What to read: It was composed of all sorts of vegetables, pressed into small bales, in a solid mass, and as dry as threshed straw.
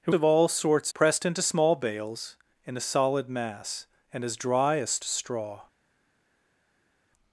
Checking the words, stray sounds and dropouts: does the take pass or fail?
fail